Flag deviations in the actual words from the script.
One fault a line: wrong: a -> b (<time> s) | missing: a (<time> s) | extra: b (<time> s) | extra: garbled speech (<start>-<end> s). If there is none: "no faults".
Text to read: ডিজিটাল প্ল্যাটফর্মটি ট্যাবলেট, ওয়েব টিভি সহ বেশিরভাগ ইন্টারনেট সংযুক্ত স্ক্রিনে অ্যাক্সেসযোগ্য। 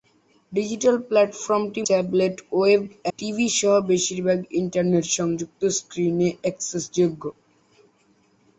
no faults